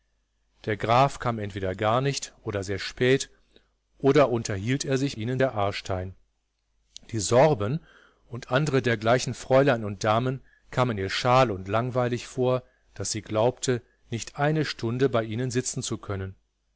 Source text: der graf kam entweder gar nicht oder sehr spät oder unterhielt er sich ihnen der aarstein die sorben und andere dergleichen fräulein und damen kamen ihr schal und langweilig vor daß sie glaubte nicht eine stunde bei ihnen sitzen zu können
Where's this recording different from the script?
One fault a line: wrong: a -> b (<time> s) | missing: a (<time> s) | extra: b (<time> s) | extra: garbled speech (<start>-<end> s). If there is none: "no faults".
no faults